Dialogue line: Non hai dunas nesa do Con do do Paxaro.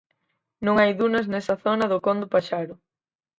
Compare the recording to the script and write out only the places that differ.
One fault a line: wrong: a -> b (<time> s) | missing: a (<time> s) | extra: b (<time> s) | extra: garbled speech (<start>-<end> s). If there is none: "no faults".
extra: zona (1.6 s)
missing: do (2.3 s)